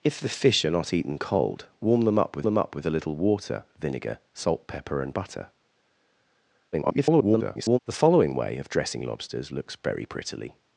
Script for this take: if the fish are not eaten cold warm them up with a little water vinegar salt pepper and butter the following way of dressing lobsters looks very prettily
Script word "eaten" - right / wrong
right